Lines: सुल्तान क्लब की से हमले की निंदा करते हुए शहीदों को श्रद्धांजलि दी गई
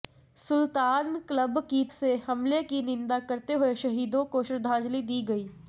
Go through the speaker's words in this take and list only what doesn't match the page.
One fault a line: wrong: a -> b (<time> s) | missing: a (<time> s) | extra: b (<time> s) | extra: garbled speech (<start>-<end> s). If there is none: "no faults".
no faults